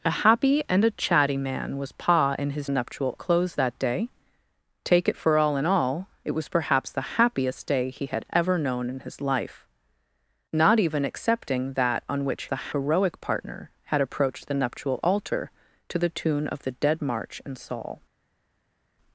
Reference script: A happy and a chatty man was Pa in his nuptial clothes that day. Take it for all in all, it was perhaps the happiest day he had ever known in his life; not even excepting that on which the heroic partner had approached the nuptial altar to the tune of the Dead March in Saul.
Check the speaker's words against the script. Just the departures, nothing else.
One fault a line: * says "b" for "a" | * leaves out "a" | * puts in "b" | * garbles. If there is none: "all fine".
all fine